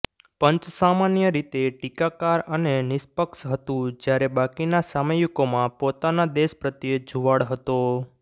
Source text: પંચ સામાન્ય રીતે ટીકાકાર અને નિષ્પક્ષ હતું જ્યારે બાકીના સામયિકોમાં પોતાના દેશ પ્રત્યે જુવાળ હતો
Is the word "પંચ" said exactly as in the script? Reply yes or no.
yes